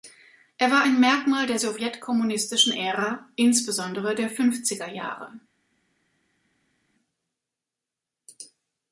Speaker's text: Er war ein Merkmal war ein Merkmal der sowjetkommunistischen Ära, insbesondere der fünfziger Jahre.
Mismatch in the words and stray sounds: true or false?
true